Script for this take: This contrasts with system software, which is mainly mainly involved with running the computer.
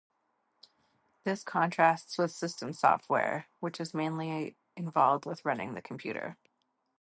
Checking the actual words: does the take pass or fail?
fail